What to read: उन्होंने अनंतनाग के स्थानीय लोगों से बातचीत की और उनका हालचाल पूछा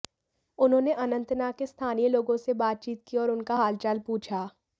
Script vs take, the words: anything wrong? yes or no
no